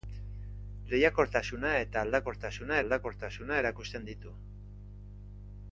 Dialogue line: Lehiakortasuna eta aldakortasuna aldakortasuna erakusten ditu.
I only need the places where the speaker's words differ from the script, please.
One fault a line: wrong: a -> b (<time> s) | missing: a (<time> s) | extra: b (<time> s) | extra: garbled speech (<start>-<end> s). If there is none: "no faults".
no faults